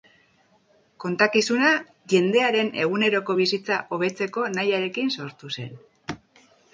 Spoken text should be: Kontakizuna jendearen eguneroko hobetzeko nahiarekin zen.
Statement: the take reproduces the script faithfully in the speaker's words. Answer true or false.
false